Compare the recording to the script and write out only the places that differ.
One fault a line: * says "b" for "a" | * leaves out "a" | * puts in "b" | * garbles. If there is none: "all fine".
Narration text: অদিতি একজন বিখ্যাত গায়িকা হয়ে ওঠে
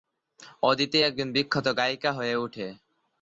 all fine